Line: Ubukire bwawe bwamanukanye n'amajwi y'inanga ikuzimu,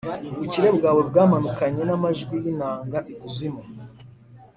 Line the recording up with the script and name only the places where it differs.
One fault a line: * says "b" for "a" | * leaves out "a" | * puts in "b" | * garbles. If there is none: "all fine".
all fine